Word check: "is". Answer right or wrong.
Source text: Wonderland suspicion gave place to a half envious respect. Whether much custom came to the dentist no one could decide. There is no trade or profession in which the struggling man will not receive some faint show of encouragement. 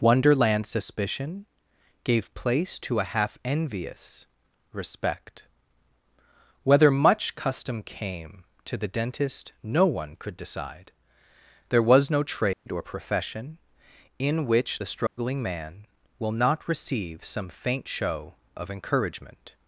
wrong